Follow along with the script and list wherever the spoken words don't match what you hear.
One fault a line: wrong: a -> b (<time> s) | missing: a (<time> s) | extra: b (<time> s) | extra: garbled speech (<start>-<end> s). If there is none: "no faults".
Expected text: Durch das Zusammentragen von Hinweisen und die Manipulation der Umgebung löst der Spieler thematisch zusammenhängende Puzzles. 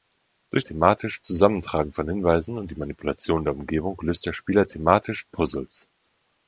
wrong: das -> thematisch (0.6 s)
missing: zusammenhängende (5.2 s)